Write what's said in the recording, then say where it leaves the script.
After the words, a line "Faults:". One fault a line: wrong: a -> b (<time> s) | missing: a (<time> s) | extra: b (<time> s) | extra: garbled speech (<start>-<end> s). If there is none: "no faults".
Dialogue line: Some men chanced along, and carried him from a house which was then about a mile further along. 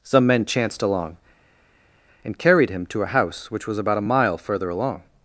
Some men chanced along, and carried him to a house which was about a mile further along.
Faults:
wrong: from -> to (2.9 s)
missing: then (3.8 s)